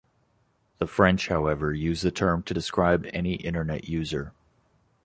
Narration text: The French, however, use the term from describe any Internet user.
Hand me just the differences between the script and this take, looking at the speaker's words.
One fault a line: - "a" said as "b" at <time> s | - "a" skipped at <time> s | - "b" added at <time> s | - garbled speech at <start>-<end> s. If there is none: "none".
- "from" said as "to" at 2.4 s